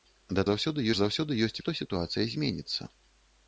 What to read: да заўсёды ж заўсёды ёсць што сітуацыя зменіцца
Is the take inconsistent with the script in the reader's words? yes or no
no